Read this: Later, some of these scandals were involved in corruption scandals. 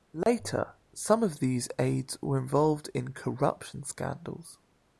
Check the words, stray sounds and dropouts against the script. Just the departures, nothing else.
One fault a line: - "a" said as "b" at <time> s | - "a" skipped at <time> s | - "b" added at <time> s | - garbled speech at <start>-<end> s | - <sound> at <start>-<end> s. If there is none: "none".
- dropout at 0.2-0.3 s
- "scandals" said as "aides" at 1.8 s